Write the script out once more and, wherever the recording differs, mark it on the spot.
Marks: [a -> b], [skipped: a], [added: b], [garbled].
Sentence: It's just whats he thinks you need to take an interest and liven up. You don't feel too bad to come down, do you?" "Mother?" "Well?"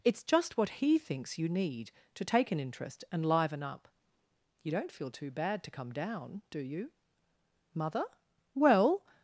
It's just [whats -> what] he thinks you need to take an interest and liven up. You don't feel too bad to come down, do you?" "Mother?" "Well?"